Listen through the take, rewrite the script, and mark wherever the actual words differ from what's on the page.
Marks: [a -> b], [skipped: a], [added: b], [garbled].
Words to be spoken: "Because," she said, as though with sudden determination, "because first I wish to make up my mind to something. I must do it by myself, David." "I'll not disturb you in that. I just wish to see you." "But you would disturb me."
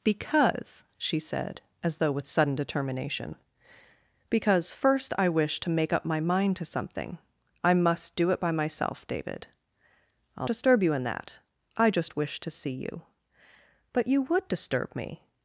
"Because," she said, as though with sudden determination, "because first I wish to make up my mind to something. I must do it by myself, David." "I'll [skipped: not] disturb you in that. I just wish to see you." "But you would disturb me."